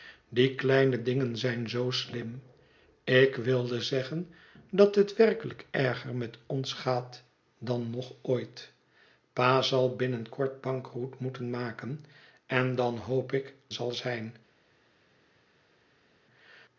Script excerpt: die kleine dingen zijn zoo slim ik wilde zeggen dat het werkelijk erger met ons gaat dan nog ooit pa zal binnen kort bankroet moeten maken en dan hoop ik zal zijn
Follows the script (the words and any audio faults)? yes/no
yes